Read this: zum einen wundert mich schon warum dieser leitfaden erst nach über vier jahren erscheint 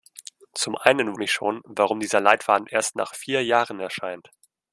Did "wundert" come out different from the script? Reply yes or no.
yes